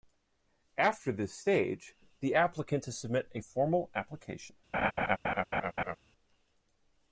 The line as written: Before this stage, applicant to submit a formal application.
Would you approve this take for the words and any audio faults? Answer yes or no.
no